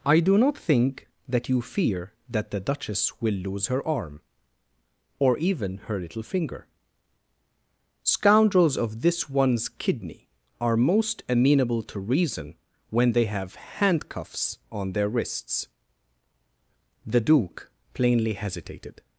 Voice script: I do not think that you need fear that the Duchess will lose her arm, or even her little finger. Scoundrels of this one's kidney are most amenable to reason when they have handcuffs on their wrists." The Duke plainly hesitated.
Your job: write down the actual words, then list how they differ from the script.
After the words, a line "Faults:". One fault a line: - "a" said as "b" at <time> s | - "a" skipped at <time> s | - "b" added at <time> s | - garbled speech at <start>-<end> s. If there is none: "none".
I do not think that you fear that the Duchess will lose her arm, or even her little finger. Scoundrels of this one's kidney are most amenable to reason when they have handcuffs on their wrists." The Duke plainly hesitated.
Faults:
- "need" skipped at 1.6 s